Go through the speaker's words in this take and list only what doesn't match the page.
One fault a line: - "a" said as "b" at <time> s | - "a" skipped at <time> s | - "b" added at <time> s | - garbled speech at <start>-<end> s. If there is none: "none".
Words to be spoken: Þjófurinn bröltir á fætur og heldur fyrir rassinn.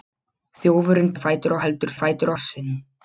- "bröltir" skipped at 1.1 s
- "fyrir" said as "fætur" at 2.0 s